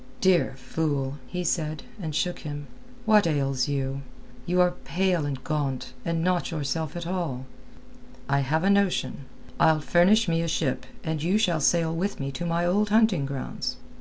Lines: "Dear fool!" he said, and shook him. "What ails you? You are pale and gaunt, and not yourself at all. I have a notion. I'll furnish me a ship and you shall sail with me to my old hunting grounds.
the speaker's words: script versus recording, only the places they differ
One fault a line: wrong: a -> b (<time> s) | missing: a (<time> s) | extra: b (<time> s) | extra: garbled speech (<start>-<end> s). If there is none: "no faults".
no faults